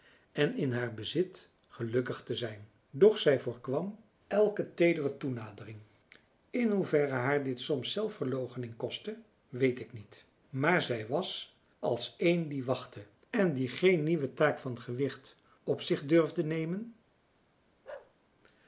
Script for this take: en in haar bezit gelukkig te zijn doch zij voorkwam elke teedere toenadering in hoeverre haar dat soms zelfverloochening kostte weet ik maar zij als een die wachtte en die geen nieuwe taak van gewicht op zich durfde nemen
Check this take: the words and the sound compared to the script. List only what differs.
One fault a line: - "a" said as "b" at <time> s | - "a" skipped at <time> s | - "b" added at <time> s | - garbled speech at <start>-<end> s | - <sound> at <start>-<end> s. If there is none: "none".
- "dat" said as "dit" at 7.4 s
- "niet" added at 9.9 s
- "was" added at 11.1 s
- bark at 17.8-18.1 s